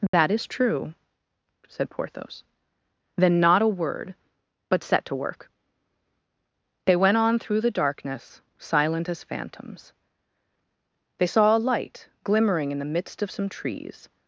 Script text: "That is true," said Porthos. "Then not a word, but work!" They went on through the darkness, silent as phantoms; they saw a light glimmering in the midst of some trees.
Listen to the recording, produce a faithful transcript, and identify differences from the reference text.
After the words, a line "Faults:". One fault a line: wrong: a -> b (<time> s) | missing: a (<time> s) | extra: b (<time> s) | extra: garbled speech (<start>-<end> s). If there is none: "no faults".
"That is true," said Porthos. "Then not a word, but set to work!" They went on through the darkness, silent as phantoms; they saw a light glimmering in the midst of some trees.
Faults:
extra: set to (4.8 s)